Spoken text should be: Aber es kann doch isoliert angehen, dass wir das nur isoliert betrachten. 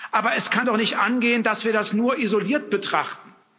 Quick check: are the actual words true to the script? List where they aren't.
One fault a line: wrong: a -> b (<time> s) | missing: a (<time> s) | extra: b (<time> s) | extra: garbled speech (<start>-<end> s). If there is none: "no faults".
wrong: isoliert -> nicht (0.8 s)